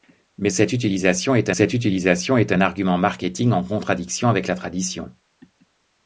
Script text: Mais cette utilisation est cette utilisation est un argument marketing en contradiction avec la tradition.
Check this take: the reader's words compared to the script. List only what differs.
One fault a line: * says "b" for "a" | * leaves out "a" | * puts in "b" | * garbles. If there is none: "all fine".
all fine